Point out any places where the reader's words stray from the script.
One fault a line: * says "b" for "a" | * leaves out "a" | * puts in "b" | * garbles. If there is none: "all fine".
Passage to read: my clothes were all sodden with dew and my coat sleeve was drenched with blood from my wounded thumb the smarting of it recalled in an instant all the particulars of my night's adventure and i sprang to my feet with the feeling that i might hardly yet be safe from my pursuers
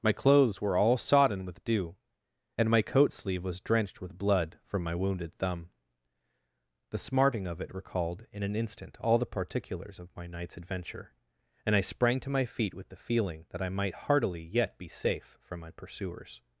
* says "heartily" for "hardly"